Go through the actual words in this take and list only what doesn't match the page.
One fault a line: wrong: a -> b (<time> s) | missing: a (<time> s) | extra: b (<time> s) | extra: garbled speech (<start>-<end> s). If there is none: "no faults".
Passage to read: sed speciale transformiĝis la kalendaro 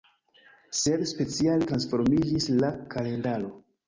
no faults